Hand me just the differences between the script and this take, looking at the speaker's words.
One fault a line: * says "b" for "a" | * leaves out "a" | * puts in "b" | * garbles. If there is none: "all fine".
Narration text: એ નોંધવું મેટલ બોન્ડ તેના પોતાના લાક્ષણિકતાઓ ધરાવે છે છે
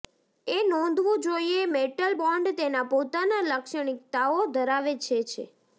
* puts in "જોઇએ"